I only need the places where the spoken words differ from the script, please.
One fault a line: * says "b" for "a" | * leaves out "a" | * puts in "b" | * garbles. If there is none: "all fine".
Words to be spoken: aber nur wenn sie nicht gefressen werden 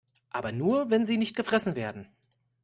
all fine